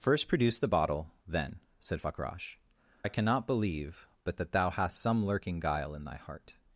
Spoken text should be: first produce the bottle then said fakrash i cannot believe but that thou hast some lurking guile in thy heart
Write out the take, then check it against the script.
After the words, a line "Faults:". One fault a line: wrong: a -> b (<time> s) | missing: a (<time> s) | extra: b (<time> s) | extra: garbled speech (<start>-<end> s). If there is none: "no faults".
first produce the bottle then said fakrash i cannot believe but that thou hast some lurking guile in thy heart
Faults:
no faults